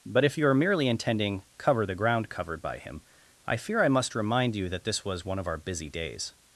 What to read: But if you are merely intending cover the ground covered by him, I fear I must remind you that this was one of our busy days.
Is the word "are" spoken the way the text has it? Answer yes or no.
yes